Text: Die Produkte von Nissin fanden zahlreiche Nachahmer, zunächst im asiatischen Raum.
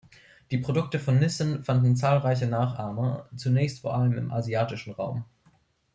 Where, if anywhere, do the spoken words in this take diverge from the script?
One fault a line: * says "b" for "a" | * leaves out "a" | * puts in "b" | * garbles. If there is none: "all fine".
* puts in "vor allem"